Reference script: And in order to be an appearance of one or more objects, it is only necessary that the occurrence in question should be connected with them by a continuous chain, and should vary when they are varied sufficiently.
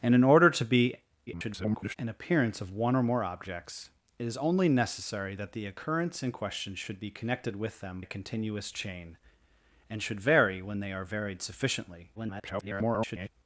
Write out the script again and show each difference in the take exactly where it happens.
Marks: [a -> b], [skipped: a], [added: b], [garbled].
And in order to be [garbled] an appearance of one or more objects, it is only necessary that the occurrence in question should be connected with them [skipped: by] a continuous chain, and should vary when they are varied sufficiently. [garbled]